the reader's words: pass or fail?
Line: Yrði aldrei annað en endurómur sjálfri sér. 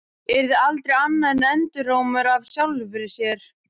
fail